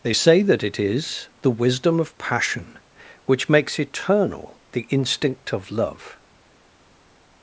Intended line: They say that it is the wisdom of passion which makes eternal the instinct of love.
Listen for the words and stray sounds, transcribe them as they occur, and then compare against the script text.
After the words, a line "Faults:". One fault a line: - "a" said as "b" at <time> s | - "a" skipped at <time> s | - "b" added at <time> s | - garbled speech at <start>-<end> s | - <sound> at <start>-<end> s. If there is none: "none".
They say that it is the wisdom of passion which makes eternal the instinct of love.
Faults:
none